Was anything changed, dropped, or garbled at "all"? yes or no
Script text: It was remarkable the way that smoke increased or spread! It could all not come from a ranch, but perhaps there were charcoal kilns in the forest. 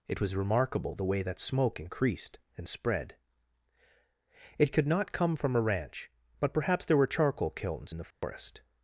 yes